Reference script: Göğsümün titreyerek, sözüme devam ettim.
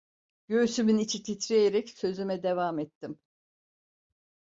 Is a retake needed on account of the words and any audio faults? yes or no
yes